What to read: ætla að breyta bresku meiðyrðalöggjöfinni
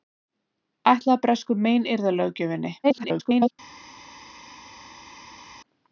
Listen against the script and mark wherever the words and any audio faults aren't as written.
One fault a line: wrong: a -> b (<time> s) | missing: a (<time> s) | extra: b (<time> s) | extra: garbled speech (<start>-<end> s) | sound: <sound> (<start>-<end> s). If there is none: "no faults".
missing: breyta (1.2 s)
extra: garbled speech (2.8-3.5 s)